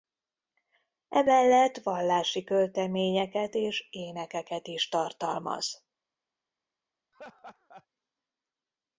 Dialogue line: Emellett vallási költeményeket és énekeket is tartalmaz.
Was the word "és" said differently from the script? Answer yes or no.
no